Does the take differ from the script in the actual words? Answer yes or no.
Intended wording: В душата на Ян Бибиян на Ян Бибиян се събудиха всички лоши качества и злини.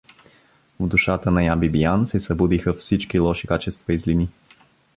yes